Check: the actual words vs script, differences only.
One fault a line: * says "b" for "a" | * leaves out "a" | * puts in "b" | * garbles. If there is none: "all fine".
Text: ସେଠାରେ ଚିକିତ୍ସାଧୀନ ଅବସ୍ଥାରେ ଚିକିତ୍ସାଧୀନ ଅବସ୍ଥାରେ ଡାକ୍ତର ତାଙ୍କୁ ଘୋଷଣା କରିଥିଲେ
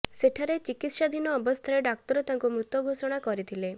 * leaves out "ଚିକିତ୍ସାଧୀନ ଅବସ୍ଥାରେ"
* puts in "ମୃତ"